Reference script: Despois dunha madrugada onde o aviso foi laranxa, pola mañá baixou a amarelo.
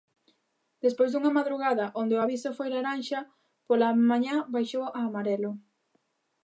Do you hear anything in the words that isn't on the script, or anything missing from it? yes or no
no